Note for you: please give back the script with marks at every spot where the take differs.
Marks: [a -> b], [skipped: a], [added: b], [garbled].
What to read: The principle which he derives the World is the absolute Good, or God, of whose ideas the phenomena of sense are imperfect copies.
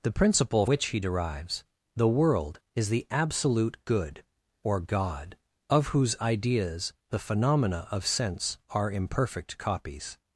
The principle which he derives the World is the absolute Good, or God, of whose ideas the phenomena of sense are imperfect copies.